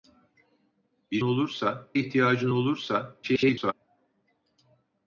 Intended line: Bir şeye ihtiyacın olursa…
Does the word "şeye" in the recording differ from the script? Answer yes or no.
yes